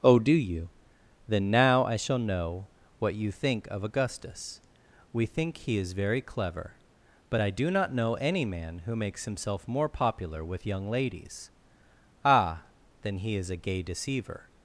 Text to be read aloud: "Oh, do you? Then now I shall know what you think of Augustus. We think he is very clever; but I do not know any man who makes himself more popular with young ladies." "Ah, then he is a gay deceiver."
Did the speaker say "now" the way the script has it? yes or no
yes